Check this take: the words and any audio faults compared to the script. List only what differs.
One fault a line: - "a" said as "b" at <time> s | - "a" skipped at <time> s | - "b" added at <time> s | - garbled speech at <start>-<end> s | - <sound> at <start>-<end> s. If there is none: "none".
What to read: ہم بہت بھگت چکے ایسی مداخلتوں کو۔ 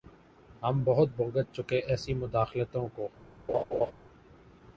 - laugh at 3.5-3.9 s